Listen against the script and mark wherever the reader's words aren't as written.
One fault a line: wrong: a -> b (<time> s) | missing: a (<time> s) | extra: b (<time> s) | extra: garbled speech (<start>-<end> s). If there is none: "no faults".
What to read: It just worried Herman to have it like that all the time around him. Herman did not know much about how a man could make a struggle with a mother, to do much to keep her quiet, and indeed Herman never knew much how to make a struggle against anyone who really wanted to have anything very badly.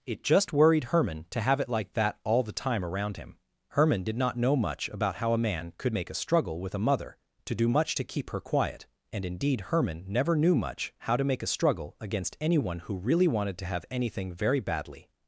no faults